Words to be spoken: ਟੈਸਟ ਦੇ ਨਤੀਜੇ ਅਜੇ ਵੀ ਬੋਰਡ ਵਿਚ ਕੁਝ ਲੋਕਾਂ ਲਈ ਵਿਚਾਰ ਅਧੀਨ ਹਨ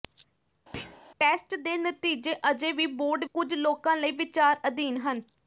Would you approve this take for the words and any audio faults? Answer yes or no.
no